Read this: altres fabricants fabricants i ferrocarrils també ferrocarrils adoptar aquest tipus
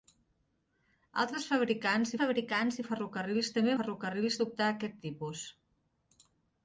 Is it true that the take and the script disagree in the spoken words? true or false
false